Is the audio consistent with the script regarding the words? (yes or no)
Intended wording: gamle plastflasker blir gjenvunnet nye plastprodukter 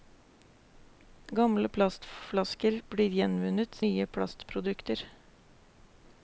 yes